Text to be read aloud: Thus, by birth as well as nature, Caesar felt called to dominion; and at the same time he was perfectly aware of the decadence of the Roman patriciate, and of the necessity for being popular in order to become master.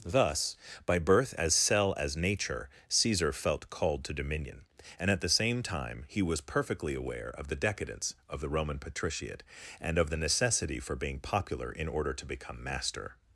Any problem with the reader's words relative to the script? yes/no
yes